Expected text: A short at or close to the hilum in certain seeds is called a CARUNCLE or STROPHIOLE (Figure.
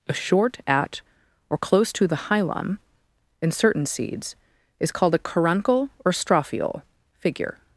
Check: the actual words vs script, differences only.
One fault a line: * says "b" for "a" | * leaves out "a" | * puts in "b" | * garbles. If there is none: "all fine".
all fine